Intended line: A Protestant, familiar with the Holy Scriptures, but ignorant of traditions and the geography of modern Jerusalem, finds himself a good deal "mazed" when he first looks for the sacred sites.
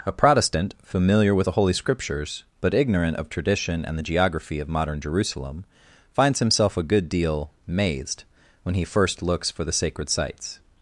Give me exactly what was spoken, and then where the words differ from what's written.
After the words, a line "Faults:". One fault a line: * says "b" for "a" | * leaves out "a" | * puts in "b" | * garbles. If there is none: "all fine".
A Protestant, familiar with the Holy Scriptures, but ignorant of tradition and the geography of modern Jerusalem, finds himself a good deal "mazed" when he first looks for the sacred sites.
Faults:
* says "tradition" for "traditions"